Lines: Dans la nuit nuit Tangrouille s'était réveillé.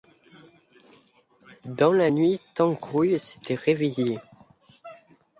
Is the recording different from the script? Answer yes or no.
yes